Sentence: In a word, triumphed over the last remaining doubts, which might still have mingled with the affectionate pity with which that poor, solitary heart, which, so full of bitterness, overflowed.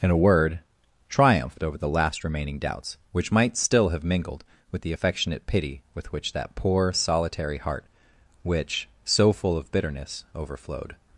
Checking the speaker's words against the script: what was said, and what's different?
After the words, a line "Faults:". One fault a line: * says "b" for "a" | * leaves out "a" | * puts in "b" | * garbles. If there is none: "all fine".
In a word, triumphed over the last remaining doubts, which might still have mingled with the affectionate pity with which that poor, solitary heart, which, so full of bitterness, overflowed.
Faults:
all fine